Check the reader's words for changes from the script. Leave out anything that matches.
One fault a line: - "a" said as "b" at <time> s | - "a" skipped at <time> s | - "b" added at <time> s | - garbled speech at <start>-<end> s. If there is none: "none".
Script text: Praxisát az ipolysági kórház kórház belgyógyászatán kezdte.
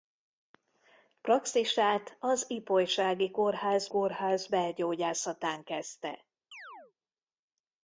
none